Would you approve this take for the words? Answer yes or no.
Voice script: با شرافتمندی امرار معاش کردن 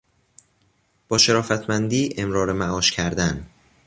yes